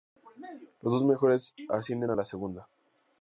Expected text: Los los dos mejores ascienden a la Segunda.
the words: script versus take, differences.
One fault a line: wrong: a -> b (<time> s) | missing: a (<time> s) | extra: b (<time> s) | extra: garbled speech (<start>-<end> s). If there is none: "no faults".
missing: los (0.9 s)